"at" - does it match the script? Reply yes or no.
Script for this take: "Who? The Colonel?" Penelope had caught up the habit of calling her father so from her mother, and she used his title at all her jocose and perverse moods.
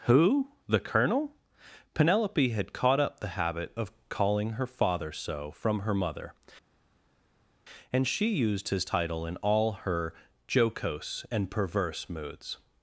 no